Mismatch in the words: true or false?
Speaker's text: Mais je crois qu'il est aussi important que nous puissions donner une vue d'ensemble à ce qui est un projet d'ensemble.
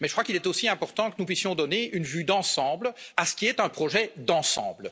false